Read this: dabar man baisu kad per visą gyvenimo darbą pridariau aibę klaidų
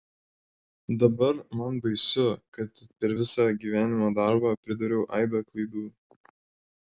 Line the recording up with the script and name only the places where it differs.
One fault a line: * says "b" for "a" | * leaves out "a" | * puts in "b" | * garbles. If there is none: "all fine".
all fine